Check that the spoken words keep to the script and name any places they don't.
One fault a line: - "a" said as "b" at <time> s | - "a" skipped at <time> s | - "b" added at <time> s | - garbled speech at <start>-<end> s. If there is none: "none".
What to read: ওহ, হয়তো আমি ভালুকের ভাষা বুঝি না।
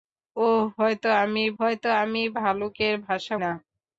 - "হয়তো আমি" added at 1.6 s
- "বুঝি" skipped at 3.3 s